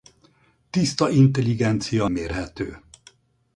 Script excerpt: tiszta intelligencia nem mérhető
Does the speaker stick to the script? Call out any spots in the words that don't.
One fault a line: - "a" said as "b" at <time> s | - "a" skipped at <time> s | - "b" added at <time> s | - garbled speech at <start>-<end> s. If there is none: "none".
- "nem" skipped at 2.1 s